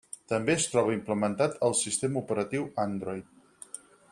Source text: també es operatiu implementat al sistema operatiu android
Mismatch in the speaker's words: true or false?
true